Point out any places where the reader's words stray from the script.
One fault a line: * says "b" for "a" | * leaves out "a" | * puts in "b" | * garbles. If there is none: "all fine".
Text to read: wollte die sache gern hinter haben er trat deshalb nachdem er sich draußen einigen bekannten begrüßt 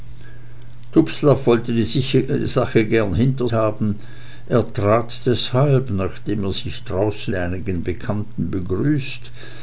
all fine